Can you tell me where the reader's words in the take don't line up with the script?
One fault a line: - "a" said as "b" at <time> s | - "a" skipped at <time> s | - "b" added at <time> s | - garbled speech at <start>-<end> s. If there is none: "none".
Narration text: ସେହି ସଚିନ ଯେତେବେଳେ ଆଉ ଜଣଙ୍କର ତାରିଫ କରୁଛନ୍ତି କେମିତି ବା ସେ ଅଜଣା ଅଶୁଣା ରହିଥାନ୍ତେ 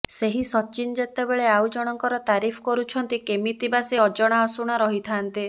none